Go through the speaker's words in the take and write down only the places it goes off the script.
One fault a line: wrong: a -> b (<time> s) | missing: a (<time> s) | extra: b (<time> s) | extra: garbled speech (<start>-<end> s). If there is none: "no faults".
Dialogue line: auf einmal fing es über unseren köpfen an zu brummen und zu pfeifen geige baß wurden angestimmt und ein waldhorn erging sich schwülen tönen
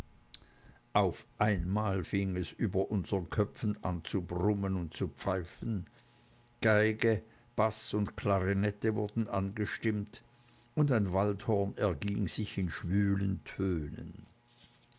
extra: und klarinette (7.9 s)
extra: in (12.6 s)